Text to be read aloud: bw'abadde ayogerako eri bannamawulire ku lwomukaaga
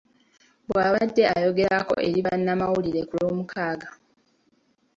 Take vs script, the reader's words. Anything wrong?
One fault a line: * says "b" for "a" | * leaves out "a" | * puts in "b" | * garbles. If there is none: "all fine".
all fine